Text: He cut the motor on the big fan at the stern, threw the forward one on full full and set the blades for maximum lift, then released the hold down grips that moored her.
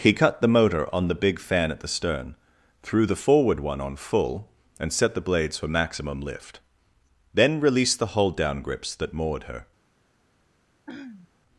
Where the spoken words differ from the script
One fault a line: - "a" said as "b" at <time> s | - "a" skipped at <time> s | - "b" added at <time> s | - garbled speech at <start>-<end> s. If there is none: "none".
- "full" skipped at 4.5 s